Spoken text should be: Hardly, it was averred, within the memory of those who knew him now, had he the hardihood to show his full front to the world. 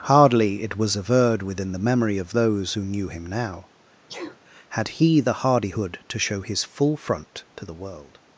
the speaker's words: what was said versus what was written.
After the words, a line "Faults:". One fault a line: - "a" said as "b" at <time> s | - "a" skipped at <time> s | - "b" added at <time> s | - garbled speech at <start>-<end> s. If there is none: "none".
Hardly, it was averred, within the memory of those who knew him now, had he the hardihood to show his full front to the world.
Faults:
none